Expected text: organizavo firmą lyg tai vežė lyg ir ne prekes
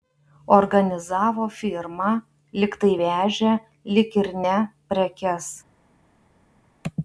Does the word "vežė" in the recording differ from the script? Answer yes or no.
no